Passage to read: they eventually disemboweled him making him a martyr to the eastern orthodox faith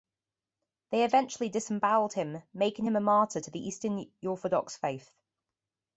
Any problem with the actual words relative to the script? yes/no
no